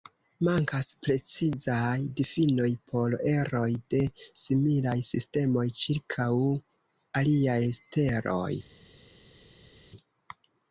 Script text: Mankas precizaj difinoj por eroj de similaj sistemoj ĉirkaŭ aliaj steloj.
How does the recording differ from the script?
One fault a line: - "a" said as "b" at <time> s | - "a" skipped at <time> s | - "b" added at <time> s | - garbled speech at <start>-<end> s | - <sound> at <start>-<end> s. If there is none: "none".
none